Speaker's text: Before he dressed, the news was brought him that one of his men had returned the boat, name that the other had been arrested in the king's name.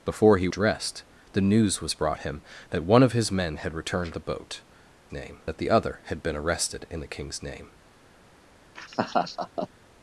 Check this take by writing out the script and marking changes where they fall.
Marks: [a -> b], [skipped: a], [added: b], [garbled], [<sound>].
Before he dressed, the news was brought him that one of his men had returned the boat, name that the other had been arrested in the king's name. [laugh]